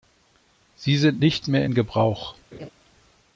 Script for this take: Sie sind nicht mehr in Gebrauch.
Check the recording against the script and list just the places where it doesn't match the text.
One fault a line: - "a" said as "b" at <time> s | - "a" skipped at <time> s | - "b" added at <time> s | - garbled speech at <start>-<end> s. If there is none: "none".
none